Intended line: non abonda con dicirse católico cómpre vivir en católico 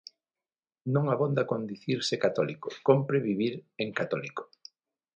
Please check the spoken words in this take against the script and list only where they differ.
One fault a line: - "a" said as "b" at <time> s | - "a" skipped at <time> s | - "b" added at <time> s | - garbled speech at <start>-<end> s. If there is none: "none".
none